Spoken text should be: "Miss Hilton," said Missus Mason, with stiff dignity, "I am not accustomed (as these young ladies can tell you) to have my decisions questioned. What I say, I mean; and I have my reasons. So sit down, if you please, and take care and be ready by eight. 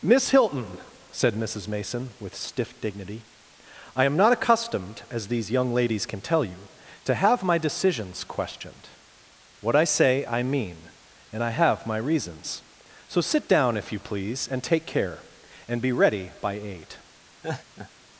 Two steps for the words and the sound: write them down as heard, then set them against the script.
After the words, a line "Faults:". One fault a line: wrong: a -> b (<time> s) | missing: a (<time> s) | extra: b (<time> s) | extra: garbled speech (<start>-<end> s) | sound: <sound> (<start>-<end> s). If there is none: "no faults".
"Miss Hilton," said Missus Mason, with stiff dignity, "I am not accustomed (as these young ladies can tell you) to have my decisions questioned. What I say, I mean; and I have my reasons. So sit down, if you please, and take care and be ready by eight.
Faults:
sound: laugh (17.4-17.9 s)